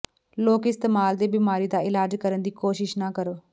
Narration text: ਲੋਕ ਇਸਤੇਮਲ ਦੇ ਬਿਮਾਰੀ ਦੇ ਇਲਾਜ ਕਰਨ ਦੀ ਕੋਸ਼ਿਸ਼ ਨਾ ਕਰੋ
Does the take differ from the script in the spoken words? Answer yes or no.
yes